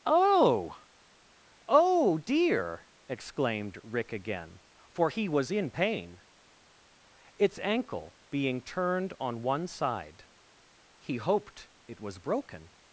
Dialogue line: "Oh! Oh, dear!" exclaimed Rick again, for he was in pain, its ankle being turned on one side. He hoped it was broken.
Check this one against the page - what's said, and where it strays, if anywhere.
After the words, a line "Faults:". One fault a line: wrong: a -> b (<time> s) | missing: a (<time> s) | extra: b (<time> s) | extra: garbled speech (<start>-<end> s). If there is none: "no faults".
"Oh! Oh, dear!" exclaimed Rick again, for he was in pain, its ankle being turned on one side. He hoped it was broken.
Faults:
no faults